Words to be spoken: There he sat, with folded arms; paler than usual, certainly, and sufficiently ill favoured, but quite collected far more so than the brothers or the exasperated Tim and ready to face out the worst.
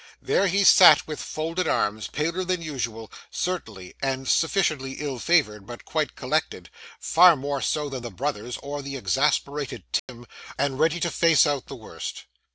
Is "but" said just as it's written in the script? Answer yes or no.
yes